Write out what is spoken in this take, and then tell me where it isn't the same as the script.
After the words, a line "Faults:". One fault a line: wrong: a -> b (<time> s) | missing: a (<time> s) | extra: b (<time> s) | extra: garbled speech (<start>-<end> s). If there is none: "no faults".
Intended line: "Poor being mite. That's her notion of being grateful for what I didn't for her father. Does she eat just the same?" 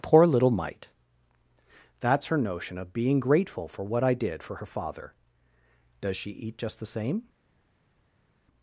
"Poor little mite. That's her notion of being grateful for what I did for her father. Does she eat just the same?"
Faults:
wrong: being -> little (0.2 s)
wrong: didn't -> did (4.2 s)